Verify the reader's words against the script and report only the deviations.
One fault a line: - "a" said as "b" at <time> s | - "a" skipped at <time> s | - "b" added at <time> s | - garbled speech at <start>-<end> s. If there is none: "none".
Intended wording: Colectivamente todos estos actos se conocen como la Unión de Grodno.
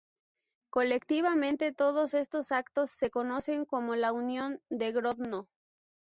none